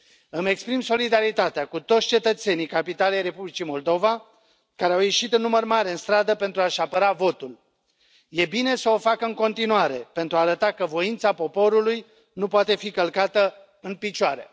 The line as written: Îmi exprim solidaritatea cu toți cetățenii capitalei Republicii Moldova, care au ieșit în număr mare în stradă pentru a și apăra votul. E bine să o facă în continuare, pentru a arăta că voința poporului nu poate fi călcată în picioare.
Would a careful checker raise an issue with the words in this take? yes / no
no